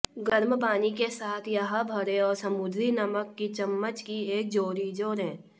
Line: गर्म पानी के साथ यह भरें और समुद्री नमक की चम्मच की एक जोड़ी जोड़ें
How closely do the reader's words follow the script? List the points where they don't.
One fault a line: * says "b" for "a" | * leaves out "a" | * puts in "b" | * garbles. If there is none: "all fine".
all fine